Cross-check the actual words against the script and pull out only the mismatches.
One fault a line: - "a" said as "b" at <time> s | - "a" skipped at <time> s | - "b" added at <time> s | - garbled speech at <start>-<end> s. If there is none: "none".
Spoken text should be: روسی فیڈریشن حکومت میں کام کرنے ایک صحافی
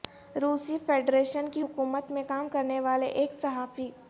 - "کی" added at 1.5 s
- "والے" added at 2.8 s